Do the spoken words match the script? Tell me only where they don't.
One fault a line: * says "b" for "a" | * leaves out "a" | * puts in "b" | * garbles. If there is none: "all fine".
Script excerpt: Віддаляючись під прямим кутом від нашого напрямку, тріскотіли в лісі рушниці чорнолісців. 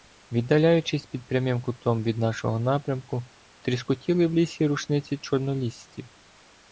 all fine